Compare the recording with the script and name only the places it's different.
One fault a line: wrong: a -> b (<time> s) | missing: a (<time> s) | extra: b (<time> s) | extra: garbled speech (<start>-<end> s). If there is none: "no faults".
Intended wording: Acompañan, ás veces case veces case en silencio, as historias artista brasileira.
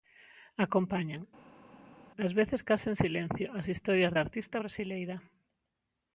missing: veces case (2.9 s)
extra: da (4.1 s)